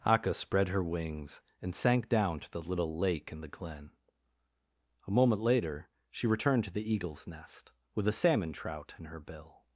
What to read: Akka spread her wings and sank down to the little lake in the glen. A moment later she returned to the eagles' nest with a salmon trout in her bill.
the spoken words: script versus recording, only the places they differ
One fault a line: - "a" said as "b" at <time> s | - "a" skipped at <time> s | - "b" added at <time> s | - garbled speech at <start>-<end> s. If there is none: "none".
none